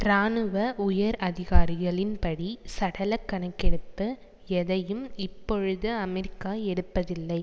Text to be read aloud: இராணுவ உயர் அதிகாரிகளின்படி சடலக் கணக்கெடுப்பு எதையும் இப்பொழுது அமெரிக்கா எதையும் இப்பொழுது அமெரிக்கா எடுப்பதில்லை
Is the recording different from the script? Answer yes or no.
yes